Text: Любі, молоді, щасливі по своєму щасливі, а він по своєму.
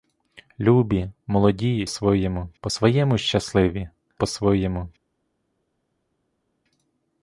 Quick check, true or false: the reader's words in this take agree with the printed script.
false